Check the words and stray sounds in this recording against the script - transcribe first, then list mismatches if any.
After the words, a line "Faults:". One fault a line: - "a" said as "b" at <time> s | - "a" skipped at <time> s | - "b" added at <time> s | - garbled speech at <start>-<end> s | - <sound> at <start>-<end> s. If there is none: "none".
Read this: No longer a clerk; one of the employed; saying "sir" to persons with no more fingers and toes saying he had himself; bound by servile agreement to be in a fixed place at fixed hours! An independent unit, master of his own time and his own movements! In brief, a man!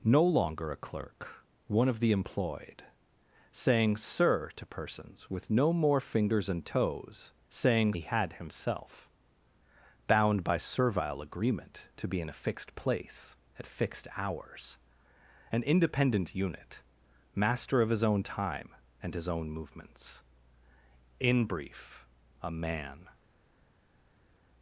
No longer a clerk; one of the employed; saying "sir" to persons with no more fingers and toes saying he had himself; bound by servile agreement to be in a fixed place at fixed hours! An independent unit, master of his own time and his own movements! In brief, a man!
Faults:
none